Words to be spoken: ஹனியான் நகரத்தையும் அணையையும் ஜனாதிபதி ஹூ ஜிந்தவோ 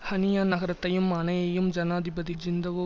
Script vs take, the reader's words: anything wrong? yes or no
yes